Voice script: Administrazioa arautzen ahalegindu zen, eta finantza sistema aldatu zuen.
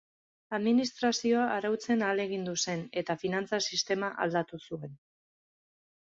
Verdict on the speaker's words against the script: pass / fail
pass